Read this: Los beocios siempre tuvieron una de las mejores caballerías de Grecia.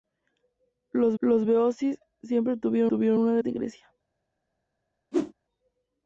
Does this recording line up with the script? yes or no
no